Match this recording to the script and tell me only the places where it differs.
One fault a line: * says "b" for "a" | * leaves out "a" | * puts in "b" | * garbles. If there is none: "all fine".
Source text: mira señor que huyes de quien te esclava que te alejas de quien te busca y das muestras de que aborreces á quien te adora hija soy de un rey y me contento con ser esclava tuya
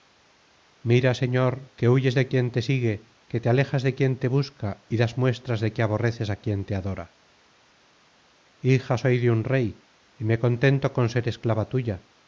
* says "sigue" for "esclava"